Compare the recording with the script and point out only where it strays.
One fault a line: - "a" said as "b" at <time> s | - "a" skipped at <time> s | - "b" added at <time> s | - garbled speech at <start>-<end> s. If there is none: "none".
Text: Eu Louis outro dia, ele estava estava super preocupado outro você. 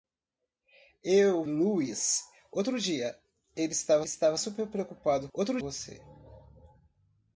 none